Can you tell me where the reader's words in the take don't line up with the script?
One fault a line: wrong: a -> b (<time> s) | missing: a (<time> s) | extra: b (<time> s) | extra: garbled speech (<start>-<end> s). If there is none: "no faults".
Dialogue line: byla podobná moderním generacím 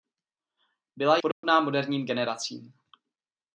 no faults